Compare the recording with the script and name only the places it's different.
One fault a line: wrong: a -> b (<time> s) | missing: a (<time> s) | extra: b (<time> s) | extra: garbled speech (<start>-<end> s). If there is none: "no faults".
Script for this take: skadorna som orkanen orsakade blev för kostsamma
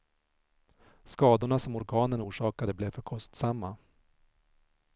no faults